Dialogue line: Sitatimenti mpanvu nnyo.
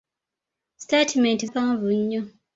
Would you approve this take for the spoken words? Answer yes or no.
yes